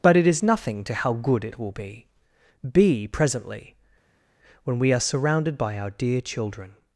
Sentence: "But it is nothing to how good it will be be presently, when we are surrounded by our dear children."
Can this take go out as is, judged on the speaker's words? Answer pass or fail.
pass